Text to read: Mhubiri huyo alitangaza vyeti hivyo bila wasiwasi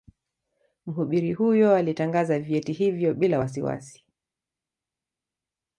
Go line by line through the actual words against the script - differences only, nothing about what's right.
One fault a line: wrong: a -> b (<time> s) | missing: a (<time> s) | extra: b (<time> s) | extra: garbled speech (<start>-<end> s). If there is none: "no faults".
no faults